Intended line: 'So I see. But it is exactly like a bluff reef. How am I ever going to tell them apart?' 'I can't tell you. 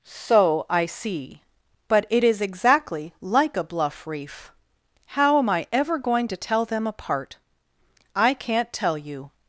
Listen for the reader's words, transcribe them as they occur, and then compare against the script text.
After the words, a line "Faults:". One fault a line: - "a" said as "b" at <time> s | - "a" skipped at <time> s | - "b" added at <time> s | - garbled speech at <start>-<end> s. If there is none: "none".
'So I see. But it is exactly like a bluff reef. How am I ever going to tell them apart?' 'I can't tell you.
Faults:
none